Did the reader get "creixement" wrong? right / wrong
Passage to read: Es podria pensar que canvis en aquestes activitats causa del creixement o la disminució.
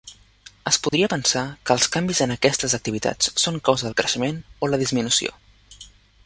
right